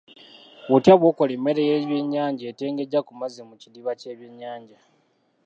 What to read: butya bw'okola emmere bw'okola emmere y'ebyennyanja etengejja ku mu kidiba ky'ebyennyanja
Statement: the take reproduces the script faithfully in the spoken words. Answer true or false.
false